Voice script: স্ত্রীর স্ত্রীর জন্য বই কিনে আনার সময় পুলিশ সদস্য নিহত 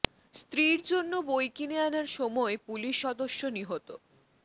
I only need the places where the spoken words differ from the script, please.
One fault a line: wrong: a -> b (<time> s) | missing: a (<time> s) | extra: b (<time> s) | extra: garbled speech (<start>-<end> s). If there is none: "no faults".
missing: স্ত্রীর (0.8 s)